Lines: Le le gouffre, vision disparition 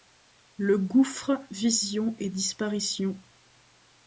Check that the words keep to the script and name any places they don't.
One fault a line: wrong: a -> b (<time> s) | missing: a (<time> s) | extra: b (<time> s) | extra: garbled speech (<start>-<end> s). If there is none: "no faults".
missing: le (0.8 s)
extra: et (2.2 s)